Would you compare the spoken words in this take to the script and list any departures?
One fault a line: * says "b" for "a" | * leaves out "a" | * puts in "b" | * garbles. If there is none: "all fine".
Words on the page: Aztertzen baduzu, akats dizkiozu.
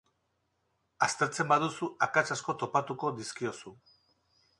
* puts in "asko topatuko"